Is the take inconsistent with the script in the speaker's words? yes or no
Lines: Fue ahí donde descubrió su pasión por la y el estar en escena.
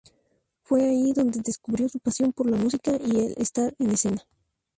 yes